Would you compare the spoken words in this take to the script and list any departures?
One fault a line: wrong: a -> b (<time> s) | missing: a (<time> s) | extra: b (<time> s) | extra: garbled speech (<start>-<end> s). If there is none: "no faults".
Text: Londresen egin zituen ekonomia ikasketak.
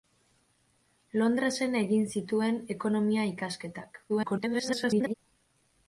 extra: garbled speech (4.1-5.1 s)